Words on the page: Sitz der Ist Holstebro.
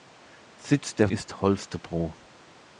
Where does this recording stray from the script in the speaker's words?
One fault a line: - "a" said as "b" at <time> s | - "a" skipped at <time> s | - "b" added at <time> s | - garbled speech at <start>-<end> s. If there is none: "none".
none